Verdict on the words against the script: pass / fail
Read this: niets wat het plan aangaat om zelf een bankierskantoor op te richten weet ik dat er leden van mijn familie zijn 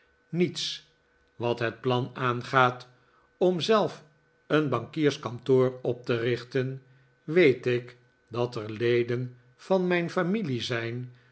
pass